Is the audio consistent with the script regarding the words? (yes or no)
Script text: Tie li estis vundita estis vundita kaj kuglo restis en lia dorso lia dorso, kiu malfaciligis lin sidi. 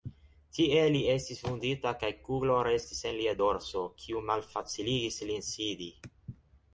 no